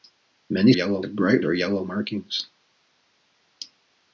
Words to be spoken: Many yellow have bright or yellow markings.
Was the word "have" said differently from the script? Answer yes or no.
no